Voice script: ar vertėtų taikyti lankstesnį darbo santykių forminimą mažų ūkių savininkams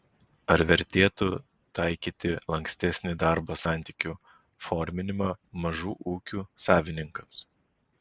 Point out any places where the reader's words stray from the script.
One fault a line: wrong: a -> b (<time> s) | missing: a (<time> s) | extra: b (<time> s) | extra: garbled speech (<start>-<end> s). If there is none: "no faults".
no faults